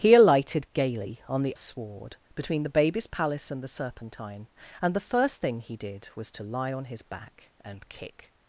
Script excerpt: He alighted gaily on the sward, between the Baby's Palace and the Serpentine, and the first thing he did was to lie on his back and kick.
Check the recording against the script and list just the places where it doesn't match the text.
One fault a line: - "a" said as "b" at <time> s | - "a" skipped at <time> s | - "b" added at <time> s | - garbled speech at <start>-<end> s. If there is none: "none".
none